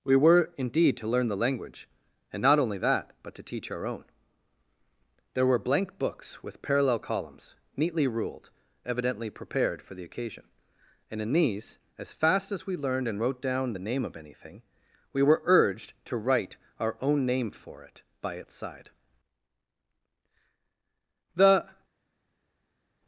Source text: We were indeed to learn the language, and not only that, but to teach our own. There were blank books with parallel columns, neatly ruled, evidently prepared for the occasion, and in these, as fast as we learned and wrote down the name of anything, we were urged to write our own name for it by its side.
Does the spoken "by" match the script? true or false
true